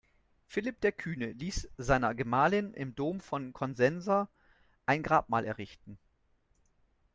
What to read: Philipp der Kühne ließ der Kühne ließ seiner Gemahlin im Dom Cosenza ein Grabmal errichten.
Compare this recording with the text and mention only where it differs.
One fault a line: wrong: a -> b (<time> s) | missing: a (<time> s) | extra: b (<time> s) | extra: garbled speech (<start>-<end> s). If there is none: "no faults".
missing: der Kühne ließ (1.7 s)
extra: von (3.2 s)